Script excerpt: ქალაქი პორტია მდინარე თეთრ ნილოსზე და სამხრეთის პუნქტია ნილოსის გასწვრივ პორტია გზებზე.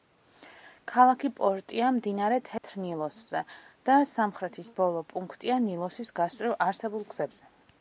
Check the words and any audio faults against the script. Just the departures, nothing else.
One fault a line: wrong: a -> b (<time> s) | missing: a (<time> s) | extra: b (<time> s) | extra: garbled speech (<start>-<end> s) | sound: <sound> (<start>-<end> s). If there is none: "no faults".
sound: dropout (2.6-2.6 s)
extra: ბოლო (4.8 s)
wrong: პორტია -> არსებულ (6.7 s)